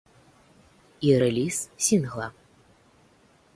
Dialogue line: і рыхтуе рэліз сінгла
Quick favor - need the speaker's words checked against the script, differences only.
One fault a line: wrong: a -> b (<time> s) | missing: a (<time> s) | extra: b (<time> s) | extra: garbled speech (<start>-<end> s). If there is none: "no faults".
missing: рыхтуе (1.1 s)